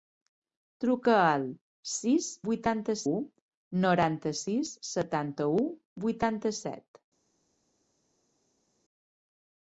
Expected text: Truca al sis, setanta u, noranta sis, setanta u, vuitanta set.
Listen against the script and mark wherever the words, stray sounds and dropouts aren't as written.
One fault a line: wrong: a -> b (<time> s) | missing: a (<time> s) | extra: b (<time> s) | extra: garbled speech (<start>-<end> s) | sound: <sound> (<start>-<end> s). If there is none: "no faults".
wrong: setanta -> vuitanta (2.5 s)